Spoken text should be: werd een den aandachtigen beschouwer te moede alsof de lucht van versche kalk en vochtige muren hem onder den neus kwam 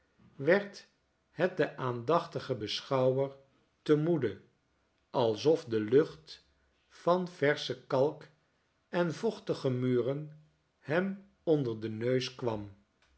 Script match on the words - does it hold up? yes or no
no